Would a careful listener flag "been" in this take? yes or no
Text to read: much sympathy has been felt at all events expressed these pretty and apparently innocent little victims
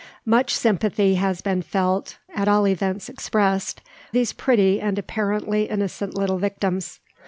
no